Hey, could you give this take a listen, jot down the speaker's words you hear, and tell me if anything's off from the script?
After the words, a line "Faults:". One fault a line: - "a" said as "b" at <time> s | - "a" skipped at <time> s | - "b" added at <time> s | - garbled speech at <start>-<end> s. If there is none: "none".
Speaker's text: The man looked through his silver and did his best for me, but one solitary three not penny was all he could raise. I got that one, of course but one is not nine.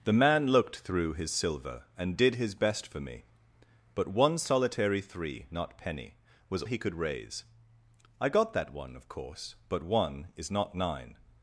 The man looked through his silver and did his best for me, but one solitary three not penny was he could raise. I got that one, of course but one is not nine.
Faults:
- "all" skipped at 6.6 s